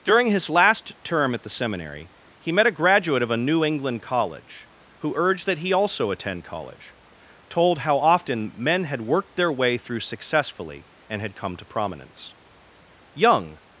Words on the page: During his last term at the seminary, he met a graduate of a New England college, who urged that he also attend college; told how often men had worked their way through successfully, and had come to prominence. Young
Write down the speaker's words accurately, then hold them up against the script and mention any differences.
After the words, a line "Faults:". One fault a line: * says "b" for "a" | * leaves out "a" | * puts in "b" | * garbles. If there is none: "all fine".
During his last term at the seminary, he met a graduate of a New England college, who urged that he also attend college; told how often men had worked their way through successfully, and had come to prominence. Young
Faults:
all fine